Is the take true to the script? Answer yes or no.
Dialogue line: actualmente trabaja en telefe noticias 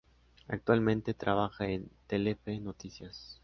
yes